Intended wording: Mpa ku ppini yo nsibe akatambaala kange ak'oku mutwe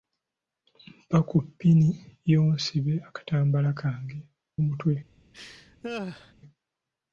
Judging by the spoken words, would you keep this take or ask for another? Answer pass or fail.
fail